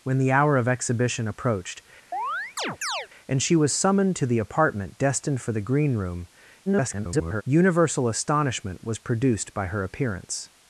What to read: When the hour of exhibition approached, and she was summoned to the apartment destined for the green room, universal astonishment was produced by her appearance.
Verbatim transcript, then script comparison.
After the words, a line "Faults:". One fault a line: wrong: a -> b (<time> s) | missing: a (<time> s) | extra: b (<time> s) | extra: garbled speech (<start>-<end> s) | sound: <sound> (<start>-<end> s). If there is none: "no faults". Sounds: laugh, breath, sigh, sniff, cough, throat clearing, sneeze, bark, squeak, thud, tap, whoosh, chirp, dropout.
When the hour of exhibition approached, and she was summoned to the apartment destined for the green room, [garbled] universal astonishment was produced by her appearance.
Faults:
sound: chirp (2.1-3.1 s)
extra: garbled speech (6.7-7.4 s)